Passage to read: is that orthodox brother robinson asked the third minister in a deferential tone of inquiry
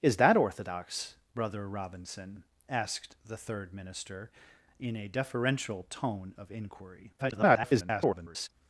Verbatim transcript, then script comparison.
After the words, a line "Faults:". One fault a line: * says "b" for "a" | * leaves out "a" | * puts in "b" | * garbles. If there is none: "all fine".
is that orthodox brother robinson asked the third minister in a deferential tone of inquiry [garbled]
Faults:
* garbles